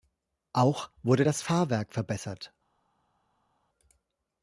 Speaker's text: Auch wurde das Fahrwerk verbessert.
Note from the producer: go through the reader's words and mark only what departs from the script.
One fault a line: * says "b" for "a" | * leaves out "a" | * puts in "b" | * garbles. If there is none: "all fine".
all fine